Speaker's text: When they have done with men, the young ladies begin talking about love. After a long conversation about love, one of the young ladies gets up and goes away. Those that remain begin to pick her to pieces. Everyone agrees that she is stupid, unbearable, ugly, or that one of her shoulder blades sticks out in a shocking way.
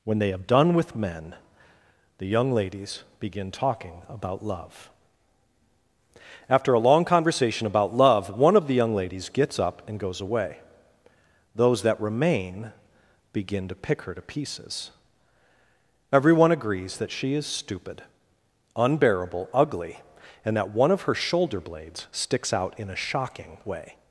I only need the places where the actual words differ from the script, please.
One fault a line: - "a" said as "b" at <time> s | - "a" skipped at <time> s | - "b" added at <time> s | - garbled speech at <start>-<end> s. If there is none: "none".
- "or" said as "and" at 20.4 s